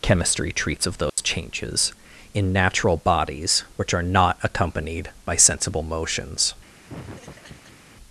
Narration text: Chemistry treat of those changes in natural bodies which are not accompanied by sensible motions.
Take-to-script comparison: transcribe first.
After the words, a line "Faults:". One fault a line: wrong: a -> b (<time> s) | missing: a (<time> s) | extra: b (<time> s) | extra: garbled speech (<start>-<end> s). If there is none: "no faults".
Chemistry treats of those changes in natural bodies which are not accompanied by sensible motions.
Faults:
wrong: treat -> treats (0.5 s)